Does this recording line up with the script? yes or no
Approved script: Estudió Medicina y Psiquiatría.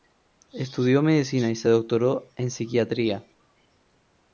no